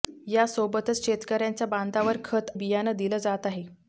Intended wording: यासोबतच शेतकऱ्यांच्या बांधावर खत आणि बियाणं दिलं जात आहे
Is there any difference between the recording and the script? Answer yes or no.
yes